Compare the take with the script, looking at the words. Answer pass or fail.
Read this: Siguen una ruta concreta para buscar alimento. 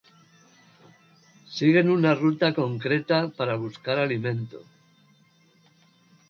pass